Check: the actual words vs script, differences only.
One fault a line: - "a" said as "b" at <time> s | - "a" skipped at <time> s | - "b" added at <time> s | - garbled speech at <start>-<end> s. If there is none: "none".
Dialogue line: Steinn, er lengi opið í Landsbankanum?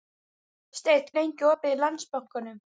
none